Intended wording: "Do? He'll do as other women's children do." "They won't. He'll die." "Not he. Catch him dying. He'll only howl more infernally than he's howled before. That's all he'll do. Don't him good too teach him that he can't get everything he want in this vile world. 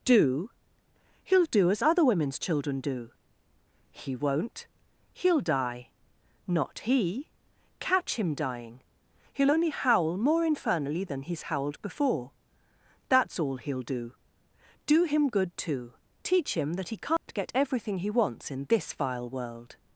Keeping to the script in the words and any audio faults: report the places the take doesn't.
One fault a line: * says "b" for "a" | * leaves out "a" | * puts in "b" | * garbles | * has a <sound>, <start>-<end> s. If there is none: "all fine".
* says "He" for "They"
* says "Do" for "Don't"
* has a dropout, 17.2-17.3 s
* says "wants" for "want"